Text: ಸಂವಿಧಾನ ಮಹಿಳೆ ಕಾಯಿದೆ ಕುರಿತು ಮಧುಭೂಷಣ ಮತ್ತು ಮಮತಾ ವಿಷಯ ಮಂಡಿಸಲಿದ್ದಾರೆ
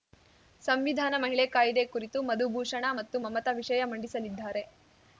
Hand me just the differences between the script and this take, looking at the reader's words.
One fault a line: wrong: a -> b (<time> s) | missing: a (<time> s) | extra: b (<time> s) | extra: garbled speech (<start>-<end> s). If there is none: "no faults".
no faults